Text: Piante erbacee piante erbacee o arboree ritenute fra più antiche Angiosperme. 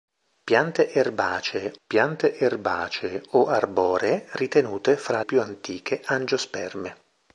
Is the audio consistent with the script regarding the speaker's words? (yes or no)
yes